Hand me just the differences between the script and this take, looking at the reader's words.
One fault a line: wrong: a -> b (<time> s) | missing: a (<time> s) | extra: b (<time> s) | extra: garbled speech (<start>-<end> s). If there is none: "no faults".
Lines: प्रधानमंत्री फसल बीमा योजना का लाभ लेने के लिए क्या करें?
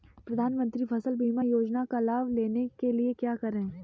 no faults